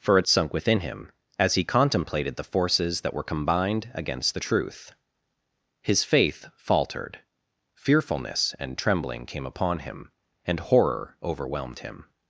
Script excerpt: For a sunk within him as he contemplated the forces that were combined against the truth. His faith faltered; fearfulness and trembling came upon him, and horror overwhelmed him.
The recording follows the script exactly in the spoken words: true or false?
true